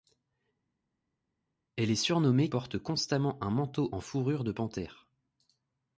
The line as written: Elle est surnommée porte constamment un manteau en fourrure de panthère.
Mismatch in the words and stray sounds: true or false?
false